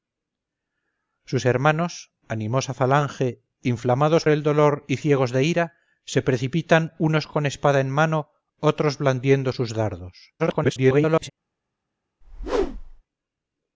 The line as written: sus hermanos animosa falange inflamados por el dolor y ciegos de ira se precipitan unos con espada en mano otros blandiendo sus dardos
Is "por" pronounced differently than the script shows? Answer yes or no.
yes